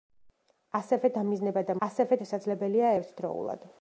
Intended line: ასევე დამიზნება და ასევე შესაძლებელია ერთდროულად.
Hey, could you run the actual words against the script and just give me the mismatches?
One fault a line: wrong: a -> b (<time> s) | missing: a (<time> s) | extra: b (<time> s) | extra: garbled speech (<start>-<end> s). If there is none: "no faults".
no faults